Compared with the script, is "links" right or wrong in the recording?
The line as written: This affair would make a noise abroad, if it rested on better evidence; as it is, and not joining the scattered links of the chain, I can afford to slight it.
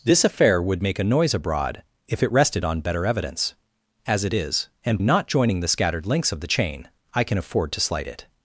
right